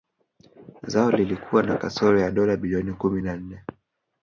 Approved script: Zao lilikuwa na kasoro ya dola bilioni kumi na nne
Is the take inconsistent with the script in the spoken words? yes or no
no